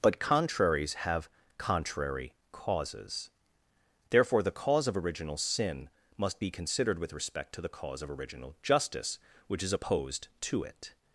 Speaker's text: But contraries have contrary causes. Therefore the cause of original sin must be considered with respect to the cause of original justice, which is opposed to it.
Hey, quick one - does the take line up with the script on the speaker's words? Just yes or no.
yes